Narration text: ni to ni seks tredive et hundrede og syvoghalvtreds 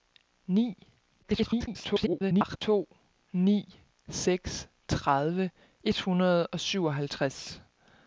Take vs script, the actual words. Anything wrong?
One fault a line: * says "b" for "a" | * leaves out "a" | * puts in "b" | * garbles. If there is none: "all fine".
* garbles